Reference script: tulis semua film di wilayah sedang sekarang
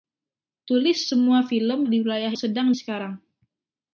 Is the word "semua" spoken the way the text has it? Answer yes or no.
yes